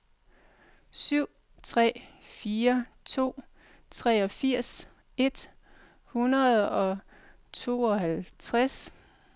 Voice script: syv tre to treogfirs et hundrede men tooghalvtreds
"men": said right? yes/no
no